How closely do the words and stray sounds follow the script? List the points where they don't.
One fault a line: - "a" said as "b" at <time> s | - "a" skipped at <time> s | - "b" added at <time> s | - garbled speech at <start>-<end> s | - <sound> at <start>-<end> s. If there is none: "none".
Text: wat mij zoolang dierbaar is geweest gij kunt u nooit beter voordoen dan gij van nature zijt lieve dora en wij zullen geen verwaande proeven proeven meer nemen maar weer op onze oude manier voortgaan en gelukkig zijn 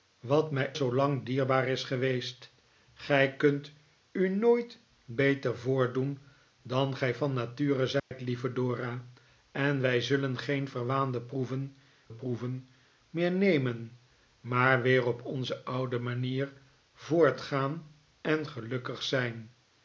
- dropout at 8.0-8.1 s